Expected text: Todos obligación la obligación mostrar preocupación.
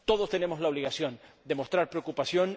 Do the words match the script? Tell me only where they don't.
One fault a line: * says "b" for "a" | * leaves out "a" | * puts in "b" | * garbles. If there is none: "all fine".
* says "tenemos" for "obligación"
* puts in "de"